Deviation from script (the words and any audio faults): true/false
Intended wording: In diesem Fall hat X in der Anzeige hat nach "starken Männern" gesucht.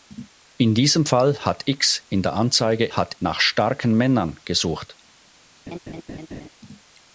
true